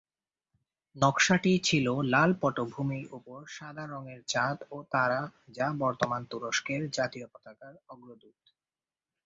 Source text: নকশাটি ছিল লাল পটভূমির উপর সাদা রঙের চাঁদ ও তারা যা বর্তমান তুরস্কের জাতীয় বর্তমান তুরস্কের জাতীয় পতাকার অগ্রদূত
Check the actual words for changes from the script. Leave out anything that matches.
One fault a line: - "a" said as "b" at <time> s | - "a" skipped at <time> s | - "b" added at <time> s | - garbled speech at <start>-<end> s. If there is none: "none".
- "বর্তমান তুরস্কের জাতীয়" skipped at 7.3 s